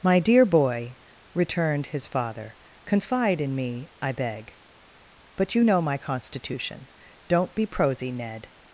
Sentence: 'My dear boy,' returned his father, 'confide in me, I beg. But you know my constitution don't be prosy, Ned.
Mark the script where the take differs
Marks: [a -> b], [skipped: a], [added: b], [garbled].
'My dear boy,' returned his father, 'confide in me, I beg. But you know my constitution don't be prosy, Ned.